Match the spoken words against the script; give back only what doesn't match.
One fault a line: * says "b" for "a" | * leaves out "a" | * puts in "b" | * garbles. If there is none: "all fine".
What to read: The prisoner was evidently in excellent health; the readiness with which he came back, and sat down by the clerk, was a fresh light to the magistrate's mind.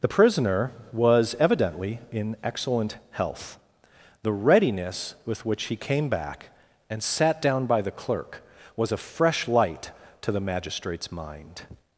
all fine